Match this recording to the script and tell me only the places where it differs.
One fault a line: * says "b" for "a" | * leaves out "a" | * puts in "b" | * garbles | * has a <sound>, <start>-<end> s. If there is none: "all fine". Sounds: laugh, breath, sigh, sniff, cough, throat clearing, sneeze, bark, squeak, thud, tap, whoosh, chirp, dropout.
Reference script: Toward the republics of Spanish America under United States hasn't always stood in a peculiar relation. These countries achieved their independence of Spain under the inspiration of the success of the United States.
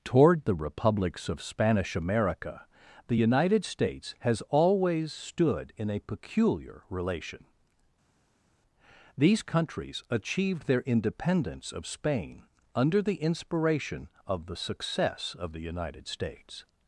* says "the" for "under"
* says "has" for "hasn't"